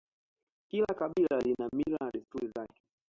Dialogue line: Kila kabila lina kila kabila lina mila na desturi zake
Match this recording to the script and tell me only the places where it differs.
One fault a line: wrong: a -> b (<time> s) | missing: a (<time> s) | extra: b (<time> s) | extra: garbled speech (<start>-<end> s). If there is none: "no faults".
missing: kila kabila lina (1.7 s)